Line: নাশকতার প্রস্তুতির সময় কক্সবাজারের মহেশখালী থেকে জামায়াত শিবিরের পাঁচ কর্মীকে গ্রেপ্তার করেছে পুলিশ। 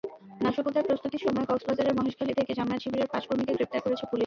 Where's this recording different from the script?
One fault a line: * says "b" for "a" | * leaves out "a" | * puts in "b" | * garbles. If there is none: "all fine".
all fine